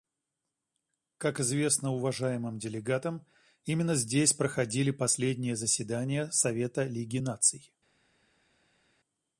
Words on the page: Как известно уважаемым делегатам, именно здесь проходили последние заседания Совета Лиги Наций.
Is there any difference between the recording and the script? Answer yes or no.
no